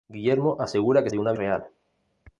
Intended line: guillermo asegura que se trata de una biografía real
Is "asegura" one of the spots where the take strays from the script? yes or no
no